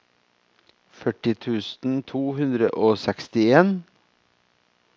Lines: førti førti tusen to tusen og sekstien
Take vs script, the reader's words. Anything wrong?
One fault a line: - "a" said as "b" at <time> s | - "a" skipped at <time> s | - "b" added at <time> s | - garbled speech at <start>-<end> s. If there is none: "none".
- "førti" skipped at 1.3 s
- "tusen" said as "hundre" at 2.4 s